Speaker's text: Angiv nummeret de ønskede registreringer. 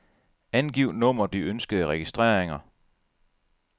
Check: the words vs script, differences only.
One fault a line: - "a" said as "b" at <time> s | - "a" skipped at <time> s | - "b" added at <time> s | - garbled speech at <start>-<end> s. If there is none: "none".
none